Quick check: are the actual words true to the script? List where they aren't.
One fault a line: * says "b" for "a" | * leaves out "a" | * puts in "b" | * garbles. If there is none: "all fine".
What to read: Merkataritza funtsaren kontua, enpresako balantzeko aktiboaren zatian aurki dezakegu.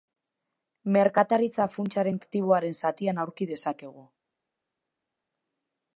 * leaves out "kontua enpresako balantzeko"